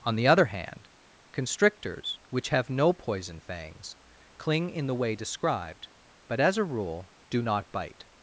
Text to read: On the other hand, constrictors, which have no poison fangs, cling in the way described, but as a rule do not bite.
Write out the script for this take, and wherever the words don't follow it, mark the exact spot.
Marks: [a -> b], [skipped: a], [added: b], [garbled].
On the other hand, constrictors, which have no poison fangs, cling in the way described, but as a rule do not bite.